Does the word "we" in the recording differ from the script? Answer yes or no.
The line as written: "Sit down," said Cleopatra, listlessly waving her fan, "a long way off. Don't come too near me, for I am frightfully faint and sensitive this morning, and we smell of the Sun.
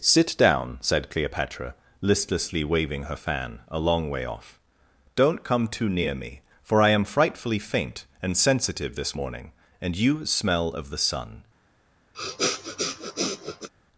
yes